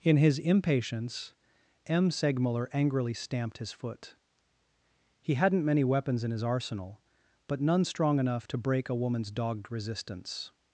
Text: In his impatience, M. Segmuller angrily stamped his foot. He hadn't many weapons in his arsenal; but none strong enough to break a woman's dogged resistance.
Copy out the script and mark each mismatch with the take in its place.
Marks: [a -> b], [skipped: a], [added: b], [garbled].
In his impatience, M. Segmuller angrily stamped his foot. He hadn't many weapons in his arsenal; but none strong enough to break a woman's dogged resistance.